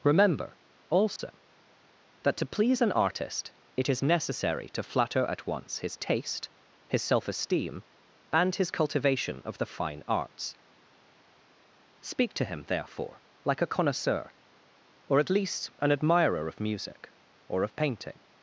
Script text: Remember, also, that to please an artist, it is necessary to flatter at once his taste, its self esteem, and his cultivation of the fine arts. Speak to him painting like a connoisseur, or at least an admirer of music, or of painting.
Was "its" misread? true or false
true